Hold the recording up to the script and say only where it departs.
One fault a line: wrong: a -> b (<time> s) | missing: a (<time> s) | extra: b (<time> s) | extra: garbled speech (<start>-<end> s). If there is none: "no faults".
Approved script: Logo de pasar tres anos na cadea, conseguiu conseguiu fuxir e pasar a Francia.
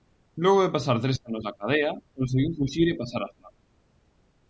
missing: conseguiu (2.5 s)